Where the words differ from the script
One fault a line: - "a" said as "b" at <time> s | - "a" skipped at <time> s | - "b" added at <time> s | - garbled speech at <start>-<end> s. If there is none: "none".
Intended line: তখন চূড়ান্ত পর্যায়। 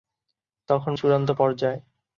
none